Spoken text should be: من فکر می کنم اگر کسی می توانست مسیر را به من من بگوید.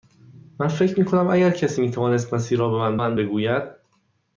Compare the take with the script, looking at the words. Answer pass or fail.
pass